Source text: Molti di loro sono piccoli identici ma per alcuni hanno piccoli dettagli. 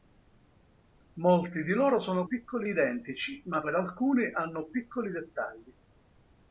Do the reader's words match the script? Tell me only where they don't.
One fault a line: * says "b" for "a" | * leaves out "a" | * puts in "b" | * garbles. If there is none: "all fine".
all fine